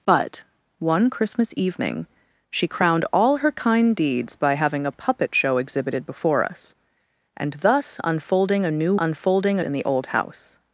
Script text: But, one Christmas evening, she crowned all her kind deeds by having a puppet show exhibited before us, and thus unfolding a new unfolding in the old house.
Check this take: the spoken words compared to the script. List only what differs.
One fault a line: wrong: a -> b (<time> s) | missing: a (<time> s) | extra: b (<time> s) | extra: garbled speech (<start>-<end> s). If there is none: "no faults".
no faults